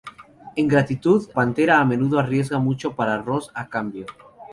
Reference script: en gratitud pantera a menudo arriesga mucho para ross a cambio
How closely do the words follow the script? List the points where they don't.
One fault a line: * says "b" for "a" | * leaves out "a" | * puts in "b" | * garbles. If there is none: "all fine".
all fine